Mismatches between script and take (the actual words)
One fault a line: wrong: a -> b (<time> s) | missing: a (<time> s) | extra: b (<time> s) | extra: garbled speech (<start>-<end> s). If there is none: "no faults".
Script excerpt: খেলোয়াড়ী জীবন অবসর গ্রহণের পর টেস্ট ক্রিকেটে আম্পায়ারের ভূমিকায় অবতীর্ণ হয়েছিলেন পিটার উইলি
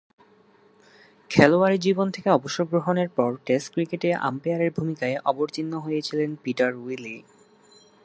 extra: থেকে (2.1 s)